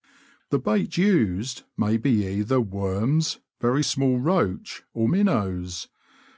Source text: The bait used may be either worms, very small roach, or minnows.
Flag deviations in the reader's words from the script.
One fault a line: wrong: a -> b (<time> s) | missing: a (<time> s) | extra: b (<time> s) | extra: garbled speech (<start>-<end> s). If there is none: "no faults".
no faults